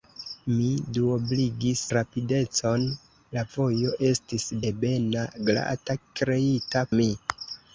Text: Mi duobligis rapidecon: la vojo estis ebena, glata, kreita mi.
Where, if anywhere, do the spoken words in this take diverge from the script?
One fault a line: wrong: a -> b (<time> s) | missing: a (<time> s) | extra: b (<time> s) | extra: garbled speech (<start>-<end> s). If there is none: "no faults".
no faults